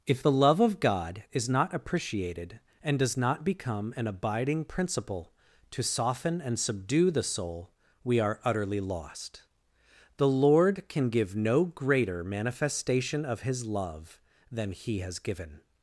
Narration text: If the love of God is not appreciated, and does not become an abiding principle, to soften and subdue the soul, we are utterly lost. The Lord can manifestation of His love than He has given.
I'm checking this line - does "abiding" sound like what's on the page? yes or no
yes